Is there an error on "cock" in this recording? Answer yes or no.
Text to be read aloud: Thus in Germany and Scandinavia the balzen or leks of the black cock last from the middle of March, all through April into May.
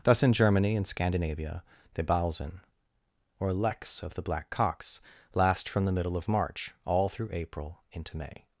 yes